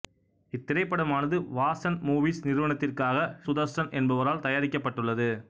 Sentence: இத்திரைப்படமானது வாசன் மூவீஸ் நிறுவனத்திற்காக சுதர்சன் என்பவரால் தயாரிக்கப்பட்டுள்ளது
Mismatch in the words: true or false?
false